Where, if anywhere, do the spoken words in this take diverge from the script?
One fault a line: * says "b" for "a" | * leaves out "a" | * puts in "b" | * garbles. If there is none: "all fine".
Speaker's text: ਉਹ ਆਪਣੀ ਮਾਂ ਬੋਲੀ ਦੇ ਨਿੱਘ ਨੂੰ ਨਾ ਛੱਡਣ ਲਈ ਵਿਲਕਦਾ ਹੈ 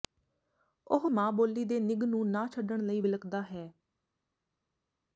* leaves out "ਆਪਣੀ"